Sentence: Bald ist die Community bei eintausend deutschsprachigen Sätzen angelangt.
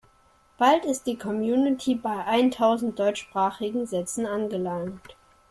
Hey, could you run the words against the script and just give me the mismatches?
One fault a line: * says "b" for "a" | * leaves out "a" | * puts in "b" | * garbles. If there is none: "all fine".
all fine